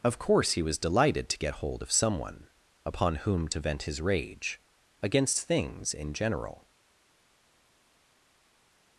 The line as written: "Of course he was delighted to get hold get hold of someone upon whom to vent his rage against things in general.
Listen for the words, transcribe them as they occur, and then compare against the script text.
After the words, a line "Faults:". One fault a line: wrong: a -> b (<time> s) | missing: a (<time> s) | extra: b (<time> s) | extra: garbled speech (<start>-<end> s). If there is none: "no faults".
"Of course he was delighted to get hold of someone upon whom to vent his rage against things in general.
Faults:
missing: get hold (1.8 s)